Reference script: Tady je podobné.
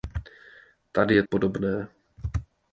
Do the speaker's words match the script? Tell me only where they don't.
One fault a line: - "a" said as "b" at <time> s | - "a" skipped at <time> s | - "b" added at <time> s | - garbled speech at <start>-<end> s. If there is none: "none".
none